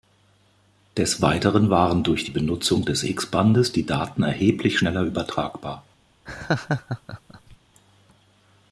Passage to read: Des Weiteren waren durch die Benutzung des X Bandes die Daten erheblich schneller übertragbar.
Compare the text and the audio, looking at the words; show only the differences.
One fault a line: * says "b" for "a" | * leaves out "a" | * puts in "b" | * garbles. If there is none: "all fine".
all fine